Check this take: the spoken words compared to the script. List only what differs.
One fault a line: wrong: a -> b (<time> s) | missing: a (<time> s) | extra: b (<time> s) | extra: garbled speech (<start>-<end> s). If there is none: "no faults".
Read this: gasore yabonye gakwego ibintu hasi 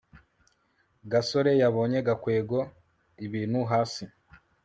no faults